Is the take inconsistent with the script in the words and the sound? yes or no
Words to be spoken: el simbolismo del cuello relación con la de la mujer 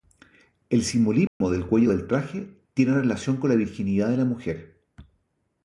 yes